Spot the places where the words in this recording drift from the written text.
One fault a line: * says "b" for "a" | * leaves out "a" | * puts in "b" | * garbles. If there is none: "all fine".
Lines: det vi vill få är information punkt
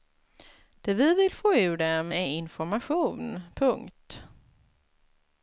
* puts in "ur dem"